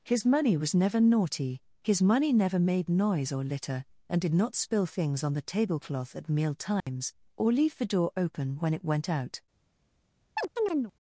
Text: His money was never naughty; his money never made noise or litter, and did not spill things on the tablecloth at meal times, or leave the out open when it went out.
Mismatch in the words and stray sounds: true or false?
true